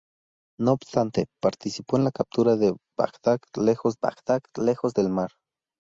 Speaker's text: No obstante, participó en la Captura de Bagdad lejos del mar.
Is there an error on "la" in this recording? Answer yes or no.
no